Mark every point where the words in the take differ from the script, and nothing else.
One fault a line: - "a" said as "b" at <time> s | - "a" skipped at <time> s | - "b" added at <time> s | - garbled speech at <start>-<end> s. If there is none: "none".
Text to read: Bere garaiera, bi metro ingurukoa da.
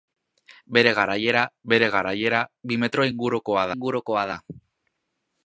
- "bere garaiera" added at 1.7 s
- "ingurukoa" added at 3.7 s